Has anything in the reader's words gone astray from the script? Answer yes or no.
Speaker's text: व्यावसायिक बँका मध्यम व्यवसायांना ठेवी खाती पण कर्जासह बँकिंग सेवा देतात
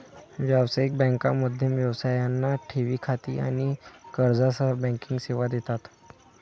yes